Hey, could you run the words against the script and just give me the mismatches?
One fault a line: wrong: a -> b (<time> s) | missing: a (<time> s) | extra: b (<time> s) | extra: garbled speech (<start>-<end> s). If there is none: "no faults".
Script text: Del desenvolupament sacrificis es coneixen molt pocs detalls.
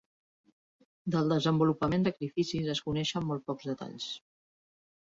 no faults